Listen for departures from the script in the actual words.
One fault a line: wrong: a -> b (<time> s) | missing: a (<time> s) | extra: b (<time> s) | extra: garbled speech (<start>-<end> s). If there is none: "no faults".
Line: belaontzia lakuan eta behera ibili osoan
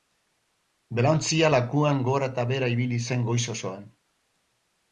extra: gora (2.1 s)
extra: zen goiz (3.1 s)